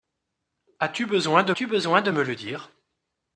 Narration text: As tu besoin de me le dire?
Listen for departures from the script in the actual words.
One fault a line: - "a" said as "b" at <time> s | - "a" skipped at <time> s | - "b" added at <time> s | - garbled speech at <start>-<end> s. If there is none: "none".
- "tu besoin de" added at 1.5 s